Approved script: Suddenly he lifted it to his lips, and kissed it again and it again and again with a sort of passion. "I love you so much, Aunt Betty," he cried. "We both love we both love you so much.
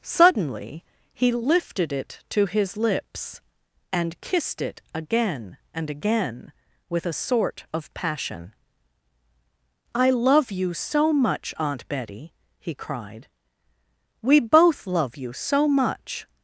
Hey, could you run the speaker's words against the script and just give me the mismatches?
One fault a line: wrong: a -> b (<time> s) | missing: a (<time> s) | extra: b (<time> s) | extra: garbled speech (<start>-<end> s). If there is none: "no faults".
missing: it (5.9 s)
missing: and again (6.5 s)
missing: we both love (15.2 s)